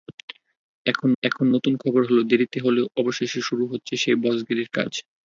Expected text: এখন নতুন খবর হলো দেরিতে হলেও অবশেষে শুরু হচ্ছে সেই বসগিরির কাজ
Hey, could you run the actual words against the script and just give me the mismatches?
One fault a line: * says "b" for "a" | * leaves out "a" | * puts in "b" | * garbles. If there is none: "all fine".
* puts in "এখন"